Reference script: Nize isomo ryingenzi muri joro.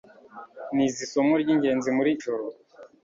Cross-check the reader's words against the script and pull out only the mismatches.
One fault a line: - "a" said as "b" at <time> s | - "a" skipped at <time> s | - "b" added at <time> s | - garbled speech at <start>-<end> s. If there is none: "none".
none